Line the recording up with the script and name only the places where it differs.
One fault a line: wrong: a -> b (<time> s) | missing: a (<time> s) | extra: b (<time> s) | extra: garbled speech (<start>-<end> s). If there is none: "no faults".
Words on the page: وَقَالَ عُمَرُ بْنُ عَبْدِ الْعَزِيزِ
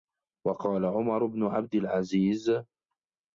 no faults